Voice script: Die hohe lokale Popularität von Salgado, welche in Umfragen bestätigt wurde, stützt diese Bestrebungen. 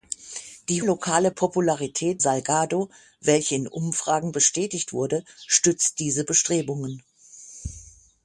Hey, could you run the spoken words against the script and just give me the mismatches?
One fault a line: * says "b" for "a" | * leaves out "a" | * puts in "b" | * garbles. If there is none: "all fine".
* leaves out "hohe"
* leaves out "von"